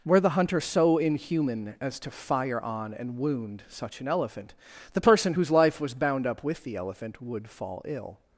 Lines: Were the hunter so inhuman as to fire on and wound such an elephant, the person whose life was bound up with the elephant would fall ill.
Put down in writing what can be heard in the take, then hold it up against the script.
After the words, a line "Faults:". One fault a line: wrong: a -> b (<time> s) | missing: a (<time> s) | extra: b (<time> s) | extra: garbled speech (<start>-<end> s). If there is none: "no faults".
Were the hunter so inhuman as to fire on and wound such an elephant, the person whose life was bound up with the elephant would fall ill.
Faults:
no faults